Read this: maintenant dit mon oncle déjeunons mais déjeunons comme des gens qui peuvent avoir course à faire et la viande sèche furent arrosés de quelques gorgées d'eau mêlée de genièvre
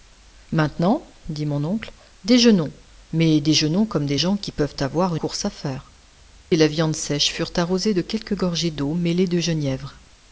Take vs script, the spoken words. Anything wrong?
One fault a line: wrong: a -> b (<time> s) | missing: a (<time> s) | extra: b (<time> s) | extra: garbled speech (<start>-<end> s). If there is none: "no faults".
no faults